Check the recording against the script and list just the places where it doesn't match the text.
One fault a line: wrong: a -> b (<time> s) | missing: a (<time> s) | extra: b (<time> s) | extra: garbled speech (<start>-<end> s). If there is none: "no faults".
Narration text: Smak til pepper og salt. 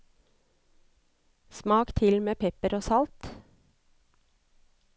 extra: med (2.2 s)